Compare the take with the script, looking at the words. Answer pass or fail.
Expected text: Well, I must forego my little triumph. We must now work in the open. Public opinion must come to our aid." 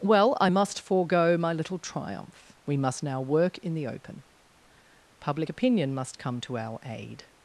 pass